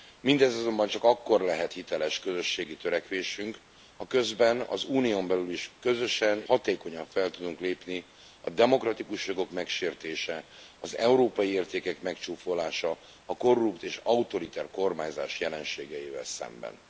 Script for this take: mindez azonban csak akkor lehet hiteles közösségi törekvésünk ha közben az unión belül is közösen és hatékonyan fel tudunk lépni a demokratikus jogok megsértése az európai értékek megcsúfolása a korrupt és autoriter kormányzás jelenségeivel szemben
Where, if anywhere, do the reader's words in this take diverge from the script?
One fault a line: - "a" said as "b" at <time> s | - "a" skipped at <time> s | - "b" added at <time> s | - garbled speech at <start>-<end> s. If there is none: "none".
- "és" skipped at 6.4 s